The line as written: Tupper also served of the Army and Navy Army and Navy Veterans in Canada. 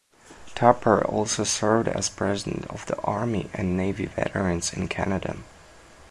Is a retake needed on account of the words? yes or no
yes